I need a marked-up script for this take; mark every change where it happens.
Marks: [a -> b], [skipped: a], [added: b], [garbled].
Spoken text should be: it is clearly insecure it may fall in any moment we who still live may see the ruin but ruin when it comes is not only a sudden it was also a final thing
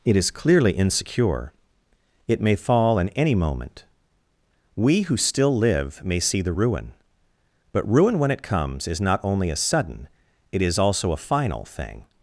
it is clearly insecure it may fall in any moment we who still live may see the ruin but ruin when it comes is not only a sudden it [was -> is] also a final thing